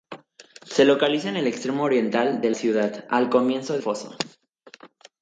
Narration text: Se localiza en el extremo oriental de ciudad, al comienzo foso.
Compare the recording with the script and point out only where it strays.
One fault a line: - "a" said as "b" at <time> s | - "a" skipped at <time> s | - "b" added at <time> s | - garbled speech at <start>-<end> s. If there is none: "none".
none